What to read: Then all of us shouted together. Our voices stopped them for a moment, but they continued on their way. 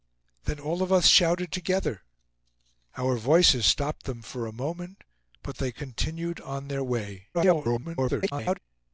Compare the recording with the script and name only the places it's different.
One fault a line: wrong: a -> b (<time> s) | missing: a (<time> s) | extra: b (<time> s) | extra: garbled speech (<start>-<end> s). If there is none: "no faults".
extra: garbled speech (7.3-8.6 s)